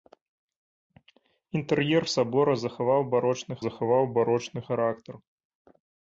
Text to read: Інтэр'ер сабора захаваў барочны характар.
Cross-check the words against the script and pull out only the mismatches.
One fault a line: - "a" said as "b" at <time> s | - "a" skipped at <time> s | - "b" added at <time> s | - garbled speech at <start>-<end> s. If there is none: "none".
- "захаваў барочны" added at 3.7 s